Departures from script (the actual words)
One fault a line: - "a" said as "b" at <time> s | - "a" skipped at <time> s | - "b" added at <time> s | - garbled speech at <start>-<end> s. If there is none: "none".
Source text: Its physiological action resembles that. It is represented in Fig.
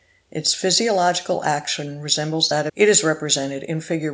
none